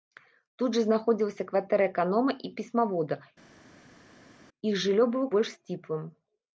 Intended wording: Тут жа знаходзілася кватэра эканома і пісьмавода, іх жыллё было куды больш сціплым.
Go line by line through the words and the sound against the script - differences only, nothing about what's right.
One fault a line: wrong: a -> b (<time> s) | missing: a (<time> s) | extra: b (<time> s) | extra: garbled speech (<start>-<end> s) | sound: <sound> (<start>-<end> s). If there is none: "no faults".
missing: куды (5.3 s)